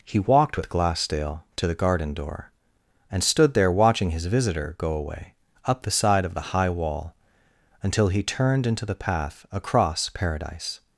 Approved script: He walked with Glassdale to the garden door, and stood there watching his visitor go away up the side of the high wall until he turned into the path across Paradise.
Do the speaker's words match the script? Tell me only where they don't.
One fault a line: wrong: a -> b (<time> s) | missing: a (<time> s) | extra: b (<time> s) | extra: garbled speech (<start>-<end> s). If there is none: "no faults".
no faults